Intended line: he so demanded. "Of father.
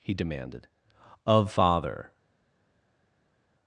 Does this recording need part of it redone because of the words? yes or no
yes